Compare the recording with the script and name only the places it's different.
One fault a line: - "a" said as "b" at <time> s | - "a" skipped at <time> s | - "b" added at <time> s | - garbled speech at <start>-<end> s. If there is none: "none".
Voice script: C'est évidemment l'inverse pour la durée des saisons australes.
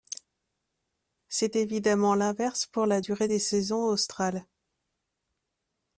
none